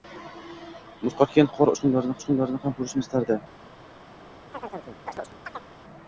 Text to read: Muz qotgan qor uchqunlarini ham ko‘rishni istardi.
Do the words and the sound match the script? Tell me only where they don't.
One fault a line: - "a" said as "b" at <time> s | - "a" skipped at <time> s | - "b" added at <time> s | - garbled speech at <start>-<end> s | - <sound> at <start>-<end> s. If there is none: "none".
- "uchqunlarini" added at 2.2 s
- chirp at 4.5-5.7 s